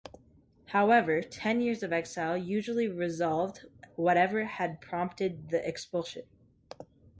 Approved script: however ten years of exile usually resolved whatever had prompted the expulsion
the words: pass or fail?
pass